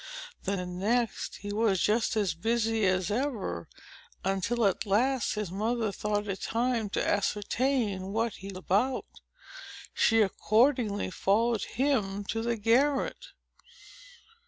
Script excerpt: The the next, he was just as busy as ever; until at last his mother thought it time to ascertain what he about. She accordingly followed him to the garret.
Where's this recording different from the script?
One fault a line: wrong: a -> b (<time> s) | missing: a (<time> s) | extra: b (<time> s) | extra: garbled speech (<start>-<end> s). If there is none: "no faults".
no faults